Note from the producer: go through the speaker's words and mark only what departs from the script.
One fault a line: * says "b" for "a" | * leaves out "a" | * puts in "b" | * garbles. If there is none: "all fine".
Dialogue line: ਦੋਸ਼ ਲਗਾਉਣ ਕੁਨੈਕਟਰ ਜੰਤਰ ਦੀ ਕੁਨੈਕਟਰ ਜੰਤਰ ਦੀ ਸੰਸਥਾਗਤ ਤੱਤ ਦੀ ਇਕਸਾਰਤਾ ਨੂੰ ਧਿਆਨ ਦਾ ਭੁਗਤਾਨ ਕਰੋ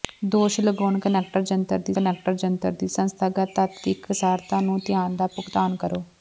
all fine